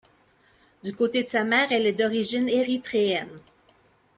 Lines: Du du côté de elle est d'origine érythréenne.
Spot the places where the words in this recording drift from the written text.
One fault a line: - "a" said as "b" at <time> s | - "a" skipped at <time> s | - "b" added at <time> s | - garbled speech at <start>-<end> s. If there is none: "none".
- "du" skipped at 0.9 s
- "sa mère" added at 1.3 s